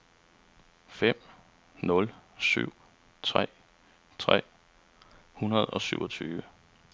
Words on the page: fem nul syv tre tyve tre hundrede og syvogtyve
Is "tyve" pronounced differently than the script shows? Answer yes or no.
yes